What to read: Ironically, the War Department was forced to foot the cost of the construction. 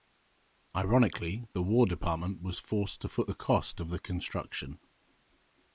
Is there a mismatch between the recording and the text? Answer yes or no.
no